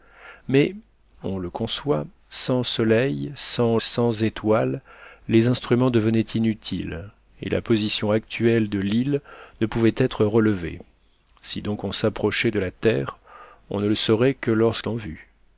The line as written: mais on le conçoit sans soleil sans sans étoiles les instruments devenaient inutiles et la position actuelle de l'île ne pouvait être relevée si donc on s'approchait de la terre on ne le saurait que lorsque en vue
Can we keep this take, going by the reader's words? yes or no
yes